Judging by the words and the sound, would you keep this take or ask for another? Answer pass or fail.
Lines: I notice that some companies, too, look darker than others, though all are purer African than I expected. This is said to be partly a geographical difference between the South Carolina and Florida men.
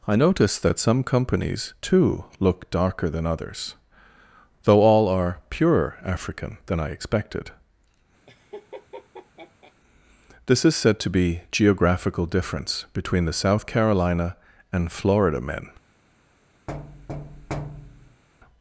fail